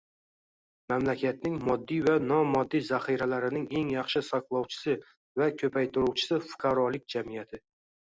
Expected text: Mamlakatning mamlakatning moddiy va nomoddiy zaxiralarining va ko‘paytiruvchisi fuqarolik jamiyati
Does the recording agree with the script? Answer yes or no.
no